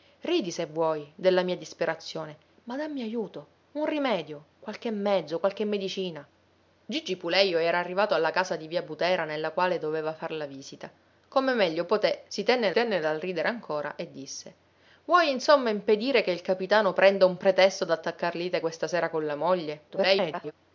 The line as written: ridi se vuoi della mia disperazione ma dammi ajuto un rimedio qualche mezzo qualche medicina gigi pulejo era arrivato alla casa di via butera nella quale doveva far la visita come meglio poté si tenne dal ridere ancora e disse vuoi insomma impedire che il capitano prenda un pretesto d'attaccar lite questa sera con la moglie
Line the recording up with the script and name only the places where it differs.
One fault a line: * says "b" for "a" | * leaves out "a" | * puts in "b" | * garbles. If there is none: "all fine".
* puts in "tenne"
* garbles